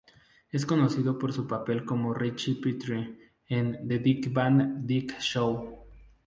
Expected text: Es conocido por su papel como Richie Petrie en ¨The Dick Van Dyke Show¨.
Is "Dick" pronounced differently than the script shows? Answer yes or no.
no